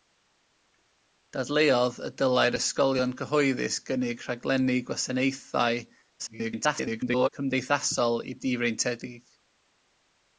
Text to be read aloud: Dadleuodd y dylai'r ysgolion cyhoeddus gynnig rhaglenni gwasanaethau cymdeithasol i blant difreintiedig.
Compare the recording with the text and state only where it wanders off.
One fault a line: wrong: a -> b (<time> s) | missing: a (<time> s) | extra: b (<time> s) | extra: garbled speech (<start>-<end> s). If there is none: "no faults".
extra: garbled speech (6.2-7.3 s)
missing: blant (8.3 s)